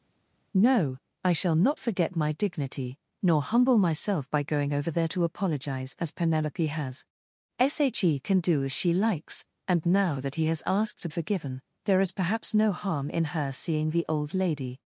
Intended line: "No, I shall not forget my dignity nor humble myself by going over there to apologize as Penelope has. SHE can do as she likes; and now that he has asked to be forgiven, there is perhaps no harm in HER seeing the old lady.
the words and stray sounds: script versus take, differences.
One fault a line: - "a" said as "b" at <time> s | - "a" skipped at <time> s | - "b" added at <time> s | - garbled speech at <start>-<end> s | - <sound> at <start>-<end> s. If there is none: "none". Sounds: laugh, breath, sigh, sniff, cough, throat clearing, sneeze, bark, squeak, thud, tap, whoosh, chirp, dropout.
- "be" skipped at 11.1 s